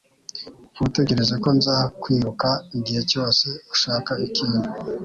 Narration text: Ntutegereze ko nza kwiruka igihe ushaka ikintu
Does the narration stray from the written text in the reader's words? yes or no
yes